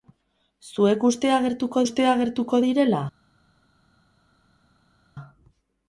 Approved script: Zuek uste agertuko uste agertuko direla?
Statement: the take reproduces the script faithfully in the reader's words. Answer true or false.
true